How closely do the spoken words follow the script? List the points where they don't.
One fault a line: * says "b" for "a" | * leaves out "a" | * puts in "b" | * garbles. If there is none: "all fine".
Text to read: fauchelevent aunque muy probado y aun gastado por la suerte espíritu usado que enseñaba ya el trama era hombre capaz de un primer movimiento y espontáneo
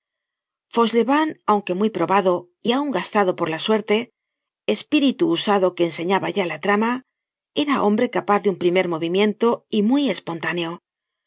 * says "la" for "el"
* puts in "muy"